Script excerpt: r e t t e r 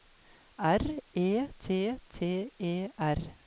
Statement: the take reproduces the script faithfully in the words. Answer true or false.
true